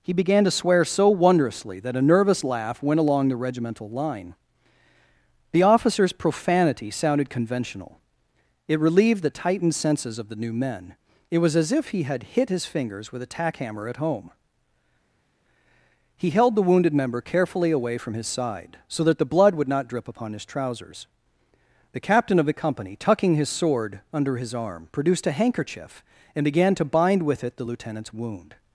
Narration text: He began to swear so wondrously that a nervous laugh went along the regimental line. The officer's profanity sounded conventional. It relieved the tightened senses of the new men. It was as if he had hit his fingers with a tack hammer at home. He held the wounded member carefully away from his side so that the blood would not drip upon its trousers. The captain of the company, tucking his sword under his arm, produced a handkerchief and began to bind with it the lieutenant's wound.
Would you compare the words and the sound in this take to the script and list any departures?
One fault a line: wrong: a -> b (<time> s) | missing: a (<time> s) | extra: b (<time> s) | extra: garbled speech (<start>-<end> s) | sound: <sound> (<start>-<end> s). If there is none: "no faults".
wrong: its -> his (20.3 s)